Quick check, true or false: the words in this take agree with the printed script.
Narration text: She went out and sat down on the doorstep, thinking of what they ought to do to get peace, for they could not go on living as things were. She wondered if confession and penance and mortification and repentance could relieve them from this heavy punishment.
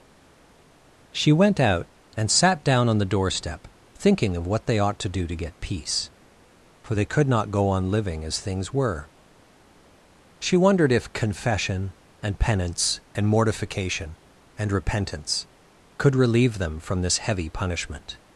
true